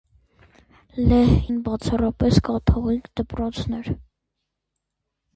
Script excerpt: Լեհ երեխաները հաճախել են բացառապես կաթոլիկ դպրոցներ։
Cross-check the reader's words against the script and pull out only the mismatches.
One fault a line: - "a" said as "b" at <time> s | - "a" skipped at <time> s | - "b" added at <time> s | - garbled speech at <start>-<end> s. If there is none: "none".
- "երեխաները հաճախել" skipped at 1.3 s